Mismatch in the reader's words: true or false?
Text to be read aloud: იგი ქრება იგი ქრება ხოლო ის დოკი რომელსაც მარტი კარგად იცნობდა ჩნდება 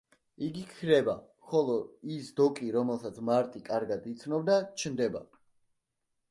true